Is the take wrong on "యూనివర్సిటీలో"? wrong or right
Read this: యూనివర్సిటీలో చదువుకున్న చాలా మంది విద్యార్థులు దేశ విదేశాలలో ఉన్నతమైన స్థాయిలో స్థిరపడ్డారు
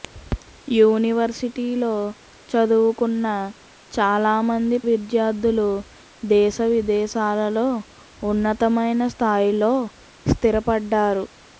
right